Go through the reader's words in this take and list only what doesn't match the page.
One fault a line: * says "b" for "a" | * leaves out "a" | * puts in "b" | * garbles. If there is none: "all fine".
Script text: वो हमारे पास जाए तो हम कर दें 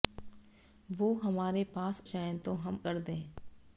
all fine